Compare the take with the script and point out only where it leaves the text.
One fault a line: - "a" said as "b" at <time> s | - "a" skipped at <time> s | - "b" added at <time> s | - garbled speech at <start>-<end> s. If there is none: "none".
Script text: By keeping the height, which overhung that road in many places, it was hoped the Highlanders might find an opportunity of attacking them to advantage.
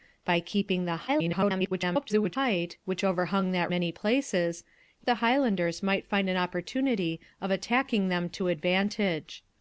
- garbled speech at 1.1-2.4 s
- "road in" skipped at 3.7 s
- "was hoped" skipped at 5.1 s